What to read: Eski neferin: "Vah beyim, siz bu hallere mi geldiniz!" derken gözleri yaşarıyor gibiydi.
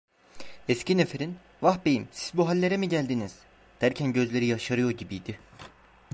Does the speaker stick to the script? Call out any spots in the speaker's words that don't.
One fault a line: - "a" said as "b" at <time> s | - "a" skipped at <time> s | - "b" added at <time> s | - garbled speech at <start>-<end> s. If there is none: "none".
none